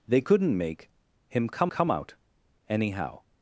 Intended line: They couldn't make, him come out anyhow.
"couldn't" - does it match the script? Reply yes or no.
yes